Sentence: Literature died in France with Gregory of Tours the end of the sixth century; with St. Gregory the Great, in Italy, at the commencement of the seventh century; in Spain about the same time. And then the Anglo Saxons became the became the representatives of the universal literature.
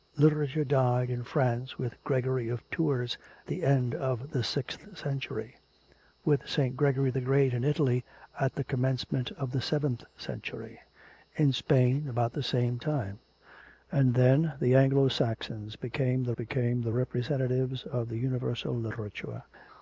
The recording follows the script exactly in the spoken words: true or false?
true